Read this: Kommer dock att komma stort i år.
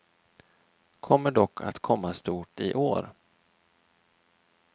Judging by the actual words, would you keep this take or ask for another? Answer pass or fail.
pass